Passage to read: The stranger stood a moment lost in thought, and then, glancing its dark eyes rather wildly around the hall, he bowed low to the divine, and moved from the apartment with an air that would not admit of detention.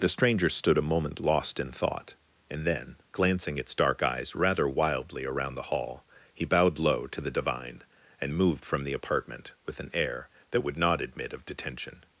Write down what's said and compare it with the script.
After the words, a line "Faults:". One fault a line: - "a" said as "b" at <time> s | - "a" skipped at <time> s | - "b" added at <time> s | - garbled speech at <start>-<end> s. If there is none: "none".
The stranger stood a moment lost in thought, and then, glancing its dark eyes rather wildly around the hall, he bowed low to the divine, and moved from the apartment with an air that would not admit of detention.
Faults:
none